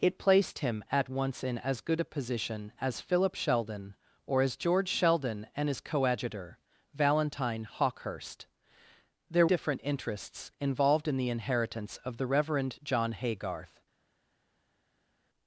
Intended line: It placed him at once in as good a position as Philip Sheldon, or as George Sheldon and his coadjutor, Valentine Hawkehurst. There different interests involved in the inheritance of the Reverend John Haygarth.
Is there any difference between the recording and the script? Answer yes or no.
no